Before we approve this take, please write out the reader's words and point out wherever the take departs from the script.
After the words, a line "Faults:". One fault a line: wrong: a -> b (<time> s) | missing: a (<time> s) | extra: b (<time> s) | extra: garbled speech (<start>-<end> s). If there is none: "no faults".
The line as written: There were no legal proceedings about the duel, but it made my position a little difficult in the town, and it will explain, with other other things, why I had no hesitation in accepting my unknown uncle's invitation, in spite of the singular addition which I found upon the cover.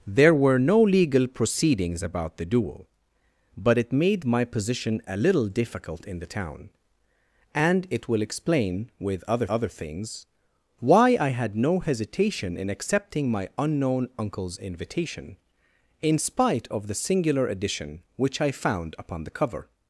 There were no legal proceedings about the duel, but it made my position a little difficult in the town, and it will explain, with other other things, why I had no hesitation in accepting my unknown uncle's invitation, in spite of the singular addition which I found upon the cover.
Faults:
no faults